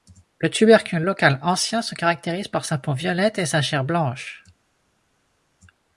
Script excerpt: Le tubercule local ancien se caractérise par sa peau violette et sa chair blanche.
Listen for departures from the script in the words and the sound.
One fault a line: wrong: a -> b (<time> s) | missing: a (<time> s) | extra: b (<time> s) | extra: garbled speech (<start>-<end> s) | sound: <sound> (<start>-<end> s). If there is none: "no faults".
no faults